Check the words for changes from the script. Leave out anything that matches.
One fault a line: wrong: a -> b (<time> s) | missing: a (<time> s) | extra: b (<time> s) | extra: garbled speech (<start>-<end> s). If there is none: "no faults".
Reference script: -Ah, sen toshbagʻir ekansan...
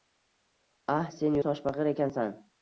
no faults